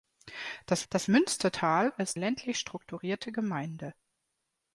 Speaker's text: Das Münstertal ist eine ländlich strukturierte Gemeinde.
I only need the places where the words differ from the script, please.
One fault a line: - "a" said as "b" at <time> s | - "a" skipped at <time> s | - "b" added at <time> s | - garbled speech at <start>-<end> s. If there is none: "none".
- "das" added at 0.9 s
- "eine" skipped at 2.2 s